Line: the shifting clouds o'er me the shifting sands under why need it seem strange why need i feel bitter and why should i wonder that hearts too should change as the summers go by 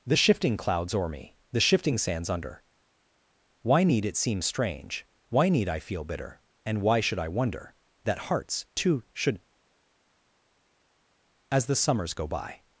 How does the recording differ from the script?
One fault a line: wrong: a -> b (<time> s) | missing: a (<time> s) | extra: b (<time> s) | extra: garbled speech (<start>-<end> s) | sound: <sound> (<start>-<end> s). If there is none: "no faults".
missing: change (9.4 s)